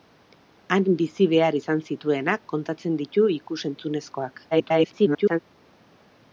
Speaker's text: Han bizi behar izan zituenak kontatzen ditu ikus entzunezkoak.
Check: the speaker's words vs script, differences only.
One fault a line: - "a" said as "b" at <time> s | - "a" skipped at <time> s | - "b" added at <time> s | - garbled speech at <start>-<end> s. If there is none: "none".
- garbled speech at 4.5-5.4 s